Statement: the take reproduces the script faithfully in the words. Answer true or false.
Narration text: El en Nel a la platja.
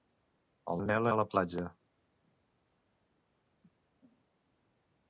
true